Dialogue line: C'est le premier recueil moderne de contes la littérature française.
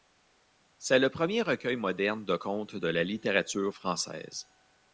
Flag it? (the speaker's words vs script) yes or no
yes